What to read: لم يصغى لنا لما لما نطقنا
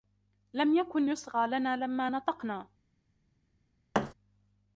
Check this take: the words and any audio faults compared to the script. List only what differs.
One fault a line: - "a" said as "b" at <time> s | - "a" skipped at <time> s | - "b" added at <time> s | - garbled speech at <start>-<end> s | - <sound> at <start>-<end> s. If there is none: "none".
- "يكن" added at 0.7 s
- "لما" skipped at 2.1 s
- thud at 3.9-4.1 s